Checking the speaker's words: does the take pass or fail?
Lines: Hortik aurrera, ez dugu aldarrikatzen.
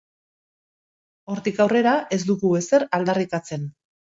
fail